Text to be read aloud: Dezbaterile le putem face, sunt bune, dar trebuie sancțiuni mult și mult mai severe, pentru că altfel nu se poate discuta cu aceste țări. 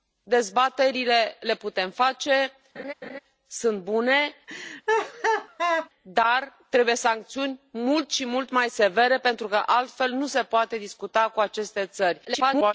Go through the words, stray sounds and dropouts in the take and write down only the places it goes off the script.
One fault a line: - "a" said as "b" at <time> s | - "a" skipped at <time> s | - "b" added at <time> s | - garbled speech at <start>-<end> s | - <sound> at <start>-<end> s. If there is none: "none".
- laugh at 2.8-3.2 s
- laugh at 4.5-5.9 s
- garbled speech at 12.2-12.7 s